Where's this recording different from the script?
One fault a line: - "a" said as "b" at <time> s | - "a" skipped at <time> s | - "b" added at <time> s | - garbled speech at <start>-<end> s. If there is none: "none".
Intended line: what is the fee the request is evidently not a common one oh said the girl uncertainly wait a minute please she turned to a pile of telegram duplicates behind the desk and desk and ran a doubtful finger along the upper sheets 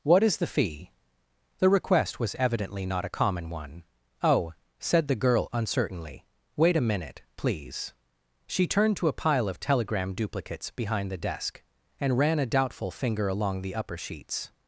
- "is" said as "was" at 2.2 s
- "desk and" skipped at 12.2 s